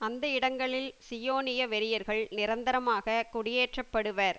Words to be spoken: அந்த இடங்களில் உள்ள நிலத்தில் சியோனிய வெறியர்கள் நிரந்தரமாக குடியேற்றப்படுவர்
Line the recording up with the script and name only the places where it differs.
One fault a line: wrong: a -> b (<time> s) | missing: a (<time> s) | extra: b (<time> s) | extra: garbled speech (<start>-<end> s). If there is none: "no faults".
missing: உள்ள நிலத்தில் (0.9 s)